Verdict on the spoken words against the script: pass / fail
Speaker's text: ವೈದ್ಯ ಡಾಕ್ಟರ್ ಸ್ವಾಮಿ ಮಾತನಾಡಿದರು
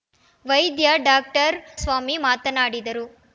pass